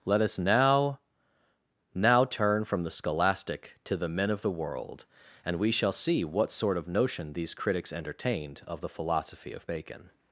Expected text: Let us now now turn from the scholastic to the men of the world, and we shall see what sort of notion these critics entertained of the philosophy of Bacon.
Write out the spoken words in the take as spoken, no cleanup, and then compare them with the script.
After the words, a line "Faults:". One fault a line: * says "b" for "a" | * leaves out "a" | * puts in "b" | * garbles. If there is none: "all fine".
Let us now now turn from the scholastic to the men of the world, and we shall see what sort of notion these critics entertained of the philosophy of Bacon.
Faults:
all fine